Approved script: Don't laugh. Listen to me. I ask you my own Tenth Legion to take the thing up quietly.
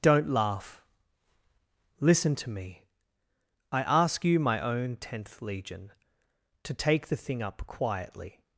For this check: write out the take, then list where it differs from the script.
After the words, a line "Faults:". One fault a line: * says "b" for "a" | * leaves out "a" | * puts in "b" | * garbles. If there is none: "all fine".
Don't laugh. Listen to me. I ask you my own Tenth Legion to take the thing up quietly.
Faults:
all fine